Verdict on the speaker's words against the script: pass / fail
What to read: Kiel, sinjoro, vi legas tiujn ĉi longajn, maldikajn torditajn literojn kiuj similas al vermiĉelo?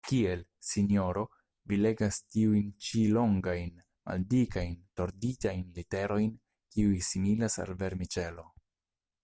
pass